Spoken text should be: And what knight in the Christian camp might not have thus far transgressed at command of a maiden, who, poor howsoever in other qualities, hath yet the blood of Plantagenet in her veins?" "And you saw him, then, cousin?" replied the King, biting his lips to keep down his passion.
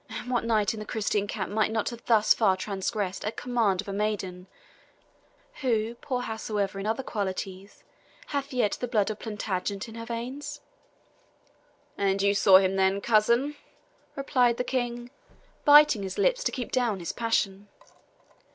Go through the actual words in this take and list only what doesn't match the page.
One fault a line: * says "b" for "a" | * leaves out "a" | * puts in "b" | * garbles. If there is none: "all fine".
all fine